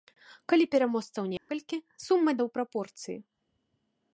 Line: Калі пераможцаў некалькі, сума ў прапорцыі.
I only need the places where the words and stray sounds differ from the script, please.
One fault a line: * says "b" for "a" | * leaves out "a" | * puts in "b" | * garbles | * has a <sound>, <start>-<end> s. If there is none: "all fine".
* has a dropout, 1.4-1.5 s